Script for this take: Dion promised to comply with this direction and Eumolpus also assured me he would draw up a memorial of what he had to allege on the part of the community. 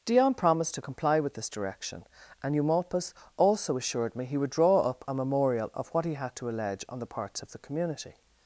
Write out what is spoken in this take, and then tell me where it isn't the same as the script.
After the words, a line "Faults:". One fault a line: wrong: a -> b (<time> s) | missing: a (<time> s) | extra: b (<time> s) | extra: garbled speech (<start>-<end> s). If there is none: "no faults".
Dion promised to comply with this direction and Eumolpus also assured me he would draw up a memorial of what he had to allege on the parts of the community.
Faults:
wrong: part -> parts (7.0 s)